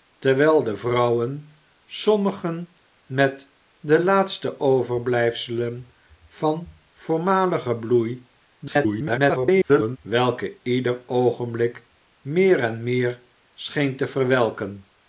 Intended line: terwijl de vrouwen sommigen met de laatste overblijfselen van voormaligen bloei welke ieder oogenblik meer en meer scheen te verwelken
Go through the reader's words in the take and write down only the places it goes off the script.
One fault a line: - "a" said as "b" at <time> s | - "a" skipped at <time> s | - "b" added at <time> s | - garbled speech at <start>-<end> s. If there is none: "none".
- garbled speech at 8.6-10.0 s